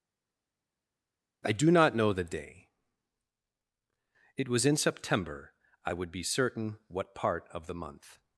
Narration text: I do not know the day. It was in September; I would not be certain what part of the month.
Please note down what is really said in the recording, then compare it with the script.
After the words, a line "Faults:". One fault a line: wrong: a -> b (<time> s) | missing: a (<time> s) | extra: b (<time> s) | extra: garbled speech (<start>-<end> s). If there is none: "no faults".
I do not know the day. It was in September; I would be certain what part of the month.
Faults:
missing: not (6.1 s)